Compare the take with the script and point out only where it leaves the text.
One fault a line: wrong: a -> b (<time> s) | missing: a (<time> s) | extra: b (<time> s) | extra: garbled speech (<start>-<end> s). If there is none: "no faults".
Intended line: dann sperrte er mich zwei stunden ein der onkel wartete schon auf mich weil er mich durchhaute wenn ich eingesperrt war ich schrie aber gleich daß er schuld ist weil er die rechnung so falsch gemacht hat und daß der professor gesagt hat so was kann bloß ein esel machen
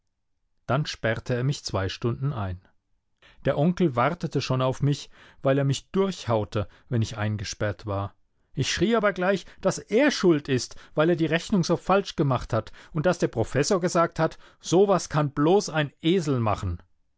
no faults